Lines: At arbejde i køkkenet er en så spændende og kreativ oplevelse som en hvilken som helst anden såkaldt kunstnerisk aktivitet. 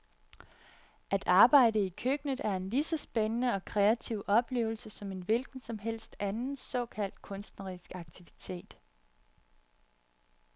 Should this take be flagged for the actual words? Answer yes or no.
yes